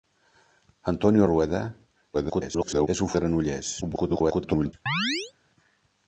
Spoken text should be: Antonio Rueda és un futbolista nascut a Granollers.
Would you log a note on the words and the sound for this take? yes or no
yes